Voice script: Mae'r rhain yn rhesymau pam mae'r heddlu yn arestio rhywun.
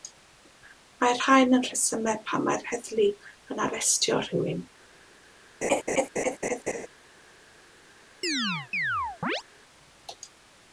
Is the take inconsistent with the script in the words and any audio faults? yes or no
yes